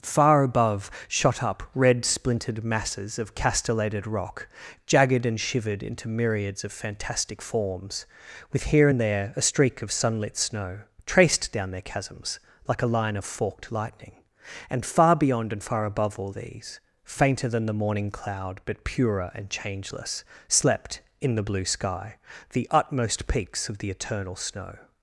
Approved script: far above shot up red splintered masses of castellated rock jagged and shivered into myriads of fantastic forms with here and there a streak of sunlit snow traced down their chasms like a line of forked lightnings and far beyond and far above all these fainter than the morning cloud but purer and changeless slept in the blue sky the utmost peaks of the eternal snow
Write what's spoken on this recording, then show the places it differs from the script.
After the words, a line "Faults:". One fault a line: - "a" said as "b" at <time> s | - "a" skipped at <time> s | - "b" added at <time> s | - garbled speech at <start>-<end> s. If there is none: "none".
far above shot up red splintered masses of castellated rock jagged and shivered into myriads of fantastic forms with here and there a streak of sunlit snow traced down their chasms like a line of forked lightning and far beyond and far above all these fainter than the morning cloud but purer and changeless slept in the blue sky the utmost peaks of the eternal snow
Faults:
- "lightnings" said as "lightning" at 13.7 s